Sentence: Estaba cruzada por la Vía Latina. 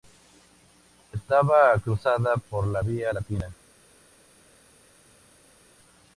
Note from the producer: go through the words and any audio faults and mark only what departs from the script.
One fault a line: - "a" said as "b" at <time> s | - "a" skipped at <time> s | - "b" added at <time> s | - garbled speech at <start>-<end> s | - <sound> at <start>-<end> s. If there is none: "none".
none